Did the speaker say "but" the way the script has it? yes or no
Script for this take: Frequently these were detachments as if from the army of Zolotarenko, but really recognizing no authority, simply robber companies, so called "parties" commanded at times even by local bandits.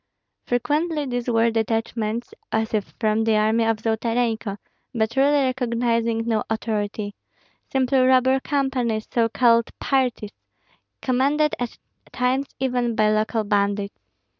yes